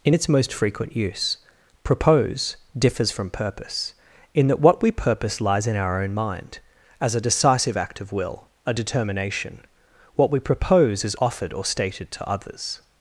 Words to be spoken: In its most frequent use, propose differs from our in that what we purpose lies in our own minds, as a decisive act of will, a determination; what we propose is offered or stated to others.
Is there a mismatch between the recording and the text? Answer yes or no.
yes